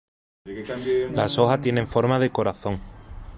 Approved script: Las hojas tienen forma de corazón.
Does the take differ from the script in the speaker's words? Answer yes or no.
no